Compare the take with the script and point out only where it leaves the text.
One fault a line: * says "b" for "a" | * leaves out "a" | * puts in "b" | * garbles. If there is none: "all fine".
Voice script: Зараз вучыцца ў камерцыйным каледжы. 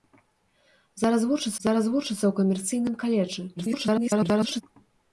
* puts in "зараз вучыцца"
* garbles